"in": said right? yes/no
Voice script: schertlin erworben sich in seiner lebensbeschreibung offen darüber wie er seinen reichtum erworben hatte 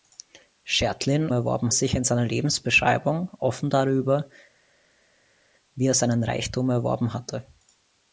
yes